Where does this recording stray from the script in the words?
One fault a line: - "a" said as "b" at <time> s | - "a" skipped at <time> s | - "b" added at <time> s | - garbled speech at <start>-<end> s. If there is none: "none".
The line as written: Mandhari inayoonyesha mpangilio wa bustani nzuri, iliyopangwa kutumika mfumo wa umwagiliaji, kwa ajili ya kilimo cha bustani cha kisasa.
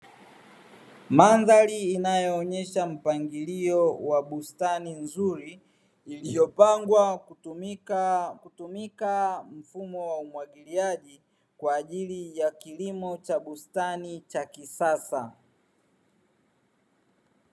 - "kutumika" added at 8.3 s